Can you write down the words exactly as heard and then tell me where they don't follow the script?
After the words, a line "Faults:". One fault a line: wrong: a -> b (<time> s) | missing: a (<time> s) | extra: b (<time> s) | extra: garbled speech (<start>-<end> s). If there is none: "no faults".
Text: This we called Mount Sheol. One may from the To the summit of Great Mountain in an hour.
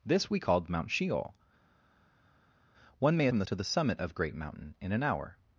This we called Mount Sheol. One may from the To the summit of Great Mountain in an hour.
Faults:
no faults